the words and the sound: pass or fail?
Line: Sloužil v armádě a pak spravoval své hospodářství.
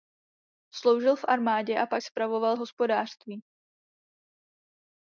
fail